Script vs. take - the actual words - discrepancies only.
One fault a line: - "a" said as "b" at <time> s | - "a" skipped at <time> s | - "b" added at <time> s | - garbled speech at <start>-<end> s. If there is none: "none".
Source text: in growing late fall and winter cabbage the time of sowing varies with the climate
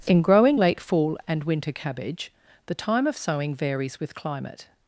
- "the" skipped at 4.1 s